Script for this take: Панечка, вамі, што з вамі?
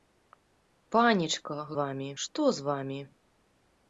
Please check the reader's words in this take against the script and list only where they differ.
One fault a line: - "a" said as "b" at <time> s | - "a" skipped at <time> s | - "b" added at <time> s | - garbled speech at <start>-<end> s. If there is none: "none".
none